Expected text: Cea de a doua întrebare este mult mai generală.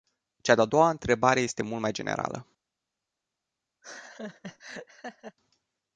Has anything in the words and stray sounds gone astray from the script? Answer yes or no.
yes